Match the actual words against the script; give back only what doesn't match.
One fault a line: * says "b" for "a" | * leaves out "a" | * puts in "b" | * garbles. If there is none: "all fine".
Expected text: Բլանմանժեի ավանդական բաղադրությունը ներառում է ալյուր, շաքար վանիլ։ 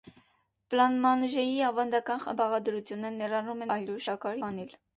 all fine